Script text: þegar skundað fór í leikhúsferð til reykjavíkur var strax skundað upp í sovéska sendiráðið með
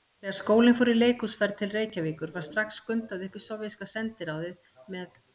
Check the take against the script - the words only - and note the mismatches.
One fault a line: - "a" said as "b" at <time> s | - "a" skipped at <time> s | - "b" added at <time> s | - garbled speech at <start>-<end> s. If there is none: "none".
- "skundað" said as "skólinn" at 0.3 s